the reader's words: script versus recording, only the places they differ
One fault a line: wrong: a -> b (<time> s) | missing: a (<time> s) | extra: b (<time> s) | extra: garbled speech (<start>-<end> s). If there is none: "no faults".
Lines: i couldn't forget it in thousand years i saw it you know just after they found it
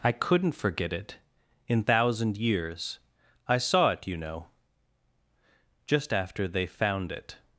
no faults